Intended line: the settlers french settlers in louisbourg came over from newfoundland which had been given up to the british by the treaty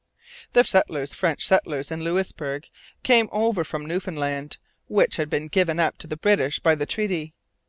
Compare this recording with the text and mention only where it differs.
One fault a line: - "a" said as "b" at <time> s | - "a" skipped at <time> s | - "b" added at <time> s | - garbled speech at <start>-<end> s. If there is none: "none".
none